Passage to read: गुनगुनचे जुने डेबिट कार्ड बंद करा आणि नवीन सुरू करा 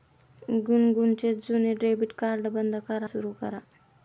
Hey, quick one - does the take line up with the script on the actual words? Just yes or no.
no